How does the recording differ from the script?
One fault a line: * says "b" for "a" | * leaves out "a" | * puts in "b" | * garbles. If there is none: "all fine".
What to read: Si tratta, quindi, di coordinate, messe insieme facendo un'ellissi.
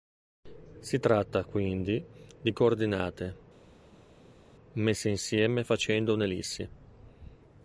all fine